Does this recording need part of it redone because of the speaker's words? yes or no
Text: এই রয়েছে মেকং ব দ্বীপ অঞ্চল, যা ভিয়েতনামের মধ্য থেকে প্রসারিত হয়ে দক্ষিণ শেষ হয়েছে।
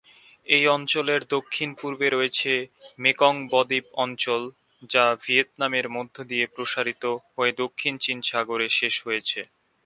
yes